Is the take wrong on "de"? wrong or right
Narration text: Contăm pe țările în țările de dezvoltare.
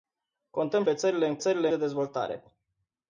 right